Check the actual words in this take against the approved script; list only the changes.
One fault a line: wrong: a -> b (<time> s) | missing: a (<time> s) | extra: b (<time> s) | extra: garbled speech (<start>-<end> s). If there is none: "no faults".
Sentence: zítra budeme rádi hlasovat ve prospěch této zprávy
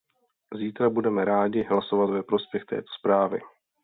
no faults